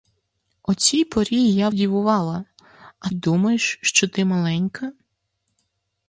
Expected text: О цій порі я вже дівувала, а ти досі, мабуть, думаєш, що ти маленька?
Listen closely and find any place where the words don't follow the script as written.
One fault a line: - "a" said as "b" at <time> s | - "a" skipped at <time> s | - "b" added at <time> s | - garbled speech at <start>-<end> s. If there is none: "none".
- "вже" skipped at 1.7 s
- "ти досі мабуть" skipped at 3.1 s